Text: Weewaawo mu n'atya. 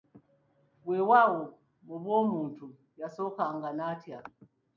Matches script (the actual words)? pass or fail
fail